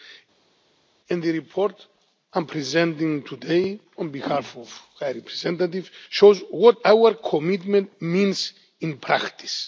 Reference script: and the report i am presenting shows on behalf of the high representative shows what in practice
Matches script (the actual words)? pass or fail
fail